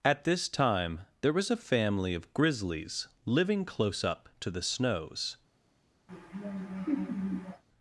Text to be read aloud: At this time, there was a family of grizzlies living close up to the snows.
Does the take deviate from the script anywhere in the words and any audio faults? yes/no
yes